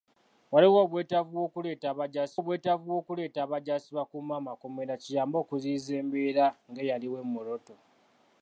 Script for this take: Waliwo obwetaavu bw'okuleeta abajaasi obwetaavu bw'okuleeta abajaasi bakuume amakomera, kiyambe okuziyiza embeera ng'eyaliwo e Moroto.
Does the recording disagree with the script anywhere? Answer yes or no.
no